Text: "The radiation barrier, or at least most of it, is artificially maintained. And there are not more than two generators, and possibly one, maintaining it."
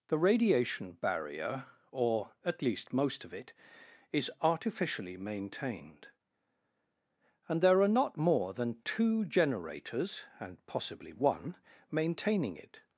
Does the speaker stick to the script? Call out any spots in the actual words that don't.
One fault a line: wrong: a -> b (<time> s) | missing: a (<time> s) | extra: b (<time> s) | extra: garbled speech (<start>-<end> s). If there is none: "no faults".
no faults